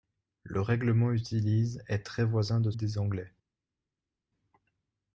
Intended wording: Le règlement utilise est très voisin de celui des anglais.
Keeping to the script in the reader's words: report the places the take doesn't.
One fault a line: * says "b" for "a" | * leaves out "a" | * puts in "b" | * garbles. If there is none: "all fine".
* leaves out "celui"